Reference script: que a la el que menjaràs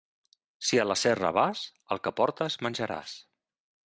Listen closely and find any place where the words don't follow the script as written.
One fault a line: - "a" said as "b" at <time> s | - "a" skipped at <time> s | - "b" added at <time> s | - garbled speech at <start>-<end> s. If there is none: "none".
- "que" said as "si" at 0.7 s
- "serra vas" added at 1.0 s
- "portes" added at 2.2 s